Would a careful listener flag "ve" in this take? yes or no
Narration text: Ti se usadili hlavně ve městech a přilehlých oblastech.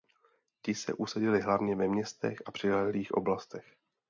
no